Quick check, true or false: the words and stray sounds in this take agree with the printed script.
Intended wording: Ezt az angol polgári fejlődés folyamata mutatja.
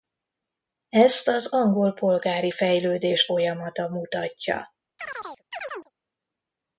false